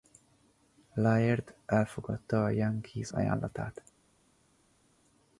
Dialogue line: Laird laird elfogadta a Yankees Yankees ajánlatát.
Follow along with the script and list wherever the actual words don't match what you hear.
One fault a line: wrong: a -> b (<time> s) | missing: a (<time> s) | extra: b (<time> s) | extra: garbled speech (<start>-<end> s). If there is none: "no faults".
missing: laird (1.6 s)
missing: Yankees (3.1 s)